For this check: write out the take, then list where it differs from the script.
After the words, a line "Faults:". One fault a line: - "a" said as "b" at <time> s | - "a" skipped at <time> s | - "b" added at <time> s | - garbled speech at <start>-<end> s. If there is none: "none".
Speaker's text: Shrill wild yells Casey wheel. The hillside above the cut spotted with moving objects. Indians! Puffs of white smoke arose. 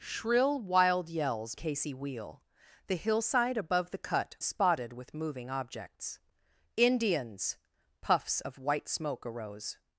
Shrill wild yells Casey wheel. The hillside above the cut spotted with moving objects. Indians! Puffs of white smoke arose.
Faults:
none